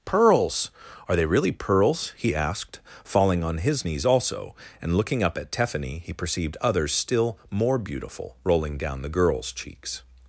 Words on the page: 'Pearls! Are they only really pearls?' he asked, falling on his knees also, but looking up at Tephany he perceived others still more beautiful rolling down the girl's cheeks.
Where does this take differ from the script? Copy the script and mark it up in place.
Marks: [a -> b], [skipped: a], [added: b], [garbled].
'Pearls! Are they [skipped: only] really pearls?' he asked, falling on his knees also, [but -> and] looking up at Tephany he perceived others still more beautiful rolling down the girl's cheeks.